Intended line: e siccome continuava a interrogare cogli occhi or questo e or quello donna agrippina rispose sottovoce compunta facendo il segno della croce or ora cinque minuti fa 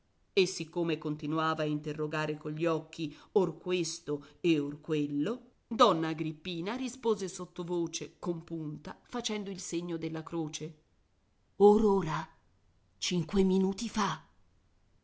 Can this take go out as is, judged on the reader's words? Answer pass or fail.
pass